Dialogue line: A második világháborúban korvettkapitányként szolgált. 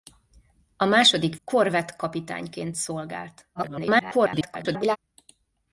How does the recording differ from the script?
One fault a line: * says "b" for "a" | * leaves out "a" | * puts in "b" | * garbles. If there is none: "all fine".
* leaves out "világháborúban"
* garbles